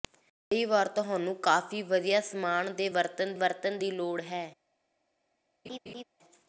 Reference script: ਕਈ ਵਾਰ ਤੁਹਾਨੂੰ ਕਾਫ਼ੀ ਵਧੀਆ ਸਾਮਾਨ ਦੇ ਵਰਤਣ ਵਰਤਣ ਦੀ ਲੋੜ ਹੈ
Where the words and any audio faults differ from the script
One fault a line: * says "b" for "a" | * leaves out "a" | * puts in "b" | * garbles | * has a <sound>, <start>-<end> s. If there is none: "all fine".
* has a laugh, 5.6-6.0 s